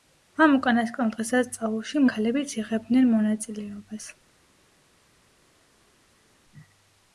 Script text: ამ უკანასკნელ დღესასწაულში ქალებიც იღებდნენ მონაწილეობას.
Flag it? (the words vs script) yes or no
no